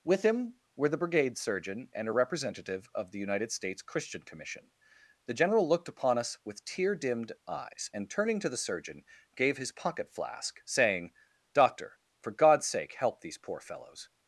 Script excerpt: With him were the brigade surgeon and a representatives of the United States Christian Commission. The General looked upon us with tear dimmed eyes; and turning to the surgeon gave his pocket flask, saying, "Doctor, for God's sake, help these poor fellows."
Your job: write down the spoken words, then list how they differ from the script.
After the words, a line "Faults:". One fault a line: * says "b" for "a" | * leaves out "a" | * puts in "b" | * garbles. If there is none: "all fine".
With him were the brigade surgeon and a representative of the United States Christian Commission. The General looked upon us with tear dimmed eyes; and turning to the surgeon gave his pocket flask, saying, "Doctor, for God's sake, help these poor fellows."
Faults:
* says "representative" for "representatives"